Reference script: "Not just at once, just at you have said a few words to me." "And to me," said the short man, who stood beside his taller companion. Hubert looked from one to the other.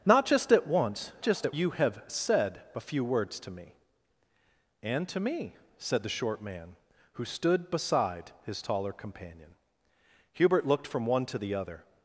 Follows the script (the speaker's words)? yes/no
yes